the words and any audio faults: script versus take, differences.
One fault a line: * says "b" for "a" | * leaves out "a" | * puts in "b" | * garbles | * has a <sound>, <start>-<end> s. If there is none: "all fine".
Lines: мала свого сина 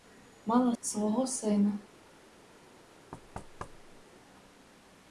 * has a thud, 3.1-4.0 s